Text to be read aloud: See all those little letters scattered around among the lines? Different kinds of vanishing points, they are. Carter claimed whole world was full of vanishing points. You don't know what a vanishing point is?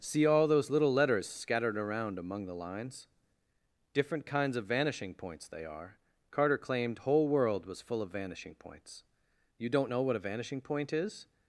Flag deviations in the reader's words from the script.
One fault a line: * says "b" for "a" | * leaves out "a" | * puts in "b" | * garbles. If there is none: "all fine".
all fine